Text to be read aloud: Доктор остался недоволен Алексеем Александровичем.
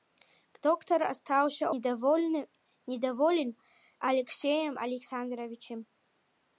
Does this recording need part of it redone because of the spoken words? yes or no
no